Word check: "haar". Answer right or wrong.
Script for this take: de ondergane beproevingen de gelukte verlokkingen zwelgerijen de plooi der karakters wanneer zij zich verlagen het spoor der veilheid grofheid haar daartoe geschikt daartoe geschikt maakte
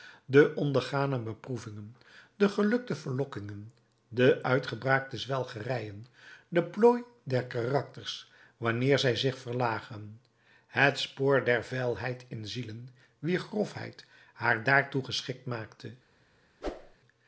right